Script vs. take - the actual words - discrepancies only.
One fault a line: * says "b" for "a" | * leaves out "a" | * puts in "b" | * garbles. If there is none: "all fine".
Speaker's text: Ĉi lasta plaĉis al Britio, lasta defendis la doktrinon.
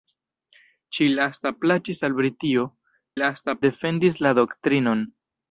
all fine